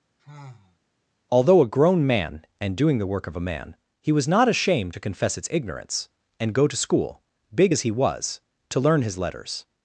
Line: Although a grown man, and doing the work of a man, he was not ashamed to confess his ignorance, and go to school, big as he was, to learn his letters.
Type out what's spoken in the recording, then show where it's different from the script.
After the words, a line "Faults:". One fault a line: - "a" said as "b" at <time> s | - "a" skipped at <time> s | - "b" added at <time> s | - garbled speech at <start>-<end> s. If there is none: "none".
Although a grown man, and doing the work of a man, he was not ashamed to confess its ignorance, and go to school, big as he was, to learn his letters.
Faults:
- "his" said as "its" at 5.4 s